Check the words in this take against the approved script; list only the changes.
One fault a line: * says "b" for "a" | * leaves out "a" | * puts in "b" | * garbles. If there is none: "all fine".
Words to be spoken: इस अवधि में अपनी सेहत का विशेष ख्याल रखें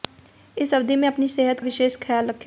* leaves out "का"